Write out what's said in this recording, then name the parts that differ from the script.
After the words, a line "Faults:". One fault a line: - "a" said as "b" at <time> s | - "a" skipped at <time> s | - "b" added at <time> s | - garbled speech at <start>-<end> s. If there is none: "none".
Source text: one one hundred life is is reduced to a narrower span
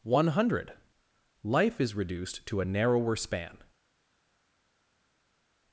one hundred life is reduced to a narrower span
Faults:
- "one" skipped at 0.3 s
- "is" skipped at 1.9 s